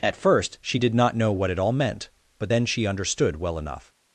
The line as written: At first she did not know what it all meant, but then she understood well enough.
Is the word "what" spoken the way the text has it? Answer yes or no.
yes